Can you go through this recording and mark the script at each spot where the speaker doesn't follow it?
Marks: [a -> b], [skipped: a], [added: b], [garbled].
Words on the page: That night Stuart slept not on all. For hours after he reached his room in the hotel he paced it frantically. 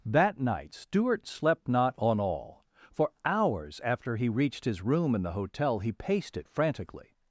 That night Stuart slept not on all. For hours after he reached his room in the hotel he paced it frantically.